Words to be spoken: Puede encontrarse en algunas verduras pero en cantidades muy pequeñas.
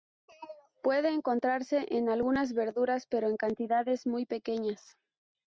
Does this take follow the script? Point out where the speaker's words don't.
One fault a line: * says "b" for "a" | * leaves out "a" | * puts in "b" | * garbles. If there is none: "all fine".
all fine